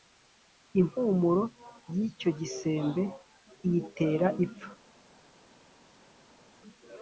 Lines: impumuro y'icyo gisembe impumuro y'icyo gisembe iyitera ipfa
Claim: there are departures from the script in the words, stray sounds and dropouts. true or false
true